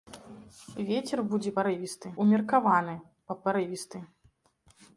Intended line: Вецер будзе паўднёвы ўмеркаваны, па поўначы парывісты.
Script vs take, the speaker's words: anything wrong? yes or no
yes